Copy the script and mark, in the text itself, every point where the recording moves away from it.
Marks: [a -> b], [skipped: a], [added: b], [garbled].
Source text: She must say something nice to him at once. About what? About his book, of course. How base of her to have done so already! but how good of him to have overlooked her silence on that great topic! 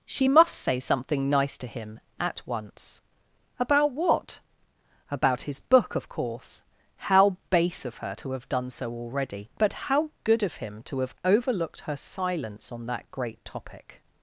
She must say something nice to him at once. About what? About his book, of course. How base of her to have done so already! but how good of him to have overlooked her silence on that great topic!